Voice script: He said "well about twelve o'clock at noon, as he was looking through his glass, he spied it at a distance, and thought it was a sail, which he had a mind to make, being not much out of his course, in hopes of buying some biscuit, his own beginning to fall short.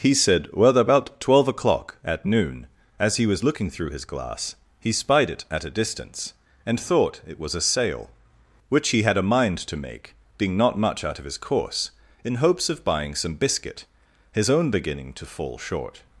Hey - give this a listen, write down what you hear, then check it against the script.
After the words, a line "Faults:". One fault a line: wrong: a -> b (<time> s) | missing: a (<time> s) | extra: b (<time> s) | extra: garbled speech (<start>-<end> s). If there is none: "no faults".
He said "well about twelve o'clock at noon, as he was looking through his glass, he spied it at a distance, and thought it was a sail, which he had a mind to make, being not much out of his course, in hopes of buying some biscuit, his own beginning to fall short.
Faults:
no faults